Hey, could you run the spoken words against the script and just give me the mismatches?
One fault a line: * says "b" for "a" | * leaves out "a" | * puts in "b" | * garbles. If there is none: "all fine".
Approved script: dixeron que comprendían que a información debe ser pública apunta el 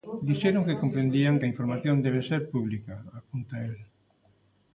all fine